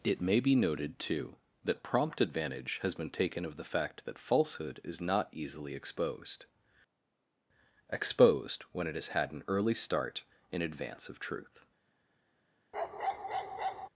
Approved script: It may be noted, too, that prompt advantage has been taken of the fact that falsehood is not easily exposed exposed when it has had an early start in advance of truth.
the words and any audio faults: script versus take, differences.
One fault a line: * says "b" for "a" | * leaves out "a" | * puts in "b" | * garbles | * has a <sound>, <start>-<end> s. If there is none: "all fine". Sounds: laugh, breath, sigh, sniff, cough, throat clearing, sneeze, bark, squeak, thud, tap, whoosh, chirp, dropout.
* has a bark, 12.7-13.9 s